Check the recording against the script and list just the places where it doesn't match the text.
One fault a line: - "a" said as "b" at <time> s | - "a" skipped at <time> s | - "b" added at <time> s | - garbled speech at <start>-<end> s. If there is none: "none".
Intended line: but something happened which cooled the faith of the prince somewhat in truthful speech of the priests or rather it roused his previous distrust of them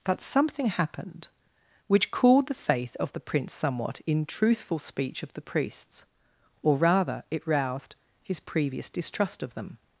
none